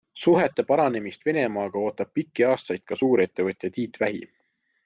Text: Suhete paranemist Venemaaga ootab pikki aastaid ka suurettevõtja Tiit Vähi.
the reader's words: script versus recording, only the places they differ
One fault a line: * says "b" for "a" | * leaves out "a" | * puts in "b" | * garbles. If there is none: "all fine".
all fine